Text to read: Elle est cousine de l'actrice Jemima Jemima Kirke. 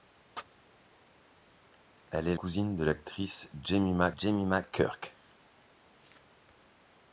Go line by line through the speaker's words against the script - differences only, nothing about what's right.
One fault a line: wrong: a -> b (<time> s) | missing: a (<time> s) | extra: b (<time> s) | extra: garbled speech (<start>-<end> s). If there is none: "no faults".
no faults